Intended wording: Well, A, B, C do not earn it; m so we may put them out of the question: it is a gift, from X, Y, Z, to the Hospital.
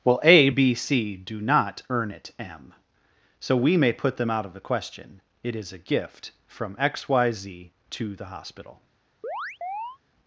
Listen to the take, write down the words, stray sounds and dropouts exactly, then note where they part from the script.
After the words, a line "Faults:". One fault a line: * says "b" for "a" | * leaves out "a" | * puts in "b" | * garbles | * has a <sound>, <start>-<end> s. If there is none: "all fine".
Well, A, B, C do not earn it; m so we may put them out of the question: it is a gift, from X, Y, Z, to the Hospital.
Faults:
* has a chirp, 9.2-10.0 s